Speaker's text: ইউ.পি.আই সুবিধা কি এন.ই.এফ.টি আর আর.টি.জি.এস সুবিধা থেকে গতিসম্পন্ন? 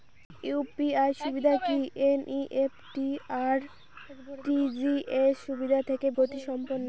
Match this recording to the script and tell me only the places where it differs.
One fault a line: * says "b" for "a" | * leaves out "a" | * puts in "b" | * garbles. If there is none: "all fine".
all fine